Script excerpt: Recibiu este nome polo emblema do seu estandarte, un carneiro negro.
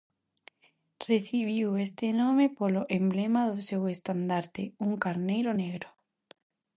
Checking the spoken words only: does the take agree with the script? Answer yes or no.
yes